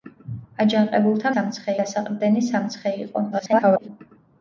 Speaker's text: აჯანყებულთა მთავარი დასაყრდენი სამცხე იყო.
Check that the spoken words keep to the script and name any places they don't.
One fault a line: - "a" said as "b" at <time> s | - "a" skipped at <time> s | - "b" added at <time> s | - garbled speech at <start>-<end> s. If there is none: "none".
- "მთავარი" said as "სამცხე" at 1.3 s
- garbled speech at 3.3-3.9 s